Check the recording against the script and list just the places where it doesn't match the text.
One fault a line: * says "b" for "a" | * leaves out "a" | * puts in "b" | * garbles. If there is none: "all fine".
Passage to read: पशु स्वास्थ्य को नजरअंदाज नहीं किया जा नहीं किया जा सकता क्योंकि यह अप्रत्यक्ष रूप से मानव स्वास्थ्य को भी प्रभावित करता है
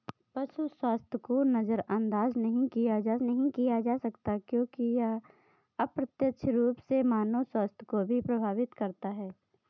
all fine